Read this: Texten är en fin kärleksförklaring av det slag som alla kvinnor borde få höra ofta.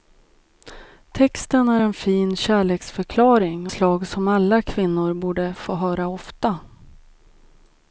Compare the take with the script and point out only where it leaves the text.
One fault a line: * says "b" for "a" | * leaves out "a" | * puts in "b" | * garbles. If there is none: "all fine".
* leaves out "av det"